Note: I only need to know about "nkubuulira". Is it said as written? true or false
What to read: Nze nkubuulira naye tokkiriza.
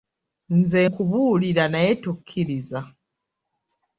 true